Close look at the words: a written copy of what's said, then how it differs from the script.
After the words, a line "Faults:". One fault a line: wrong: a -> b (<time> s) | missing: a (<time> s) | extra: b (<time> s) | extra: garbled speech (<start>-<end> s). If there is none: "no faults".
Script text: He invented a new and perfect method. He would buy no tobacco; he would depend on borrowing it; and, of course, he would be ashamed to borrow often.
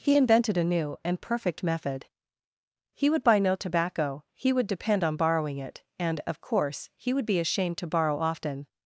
He invented a new and perfect method. He would buy no tobacco; he would depend on borrowing it; and, of course, he would be ashamed to borrow often.
Faults:
no faults